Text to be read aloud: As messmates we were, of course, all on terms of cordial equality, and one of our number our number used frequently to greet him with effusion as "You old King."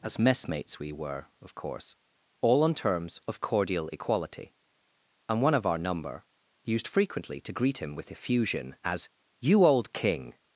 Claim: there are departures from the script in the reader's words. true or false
true